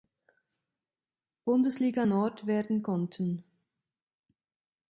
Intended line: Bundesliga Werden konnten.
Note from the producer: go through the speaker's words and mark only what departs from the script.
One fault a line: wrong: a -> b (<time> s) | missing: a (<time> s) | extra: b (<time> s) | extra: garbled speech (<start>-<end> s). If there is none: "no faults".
extra: Nord (2.0 s)